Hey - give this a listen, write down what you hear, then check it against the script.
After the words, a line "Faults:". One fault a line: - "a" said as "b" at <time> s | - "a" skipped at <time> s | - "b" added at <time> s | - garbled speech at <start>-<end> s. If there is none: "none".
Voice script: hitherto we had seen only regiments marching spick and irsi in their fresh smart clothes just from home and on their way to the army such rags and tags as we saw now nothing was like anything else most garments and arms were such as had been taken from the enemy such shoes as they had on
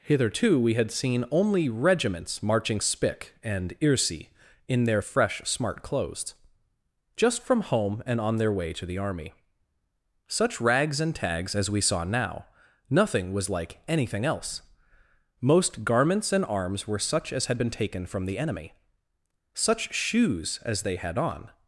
hitherto we had seen only regiments marching spick and irsi in their fresh smart clothes just from home and on their way to the army such rags and tags as we saw now nothing was like anything else most garments and arms were such as had been taken from the enemy such shoes as they had on
Faults:
none